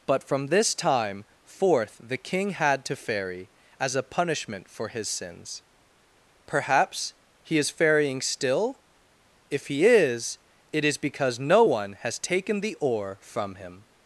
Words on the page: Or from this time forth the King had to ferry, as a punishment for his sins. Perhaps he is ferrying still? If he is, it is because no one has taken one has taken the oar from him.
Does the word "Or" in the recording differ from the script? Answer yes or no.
yes